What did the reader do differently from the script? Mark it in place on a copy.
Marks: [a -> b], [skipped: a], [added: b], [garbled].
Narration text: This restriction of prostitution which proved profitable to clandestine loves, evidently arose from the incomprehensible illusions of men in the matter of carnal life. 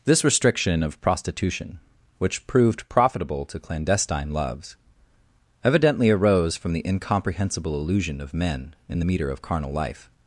This restriction of prostitution which proved profitable to clandestine loves, evidently arose from the incomprehensible [illusions -> illusion] of men in the [matter -> meter] of carnal life.